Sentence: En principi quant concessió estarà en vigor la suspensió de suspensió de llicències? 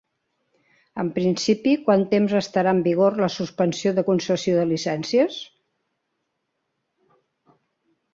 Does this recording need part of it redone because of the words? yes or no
yes